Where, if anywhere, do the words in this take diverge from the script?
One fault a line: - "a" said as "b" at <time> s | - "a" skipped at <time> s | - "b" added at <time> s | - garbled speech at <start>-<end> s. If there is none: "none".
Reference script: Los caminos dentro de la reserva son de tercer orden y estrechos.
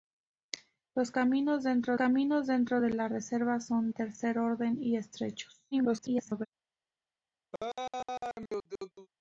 - "caminos dentro" added at 1.9 s
- "de" skipped at 3.9 s
- garbled speech at 5.7-6.5 s